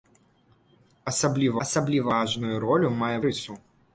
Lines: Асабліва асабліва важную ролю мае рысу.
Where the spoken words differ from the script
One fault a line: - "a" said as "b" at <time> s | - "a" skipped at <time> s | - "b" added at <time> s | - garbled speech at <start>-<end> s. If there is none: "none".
none